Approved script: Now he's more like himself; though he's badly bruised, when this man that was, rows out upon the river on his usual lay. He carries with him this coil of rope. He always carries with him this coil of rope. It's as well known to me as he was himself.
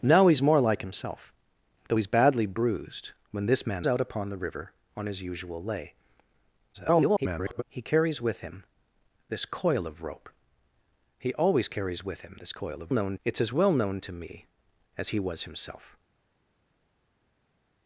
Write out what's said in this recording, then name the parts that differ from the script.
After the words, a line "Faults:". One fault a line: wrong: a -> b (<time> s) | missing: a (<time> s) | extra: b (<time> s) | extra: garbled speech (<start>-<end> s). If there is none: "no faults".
Now he's more like himself; though he's badly bruised, when this man out upon the river on his usual lay. [garbled] He carries with him this coil of rope. He always carries with him this coil of known. It's as well known to me as he was himself.
Faults:
missing: that was rows (3.8 s)
extra: garbled speech (6.7-7.6 s)
wrong: rope -> known (12.9 s)